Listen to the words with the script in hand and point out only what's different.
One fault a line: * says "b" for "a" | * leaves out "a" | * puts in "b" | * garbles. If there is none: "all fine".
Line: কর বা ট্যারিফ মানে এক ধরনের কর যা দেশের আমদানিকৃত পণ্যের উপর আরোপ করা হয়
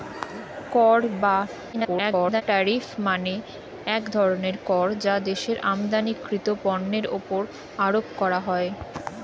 * garbles